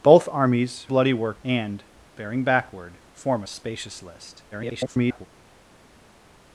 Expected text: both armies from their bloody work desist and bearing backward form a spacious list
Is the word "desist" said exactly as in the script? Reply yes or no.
no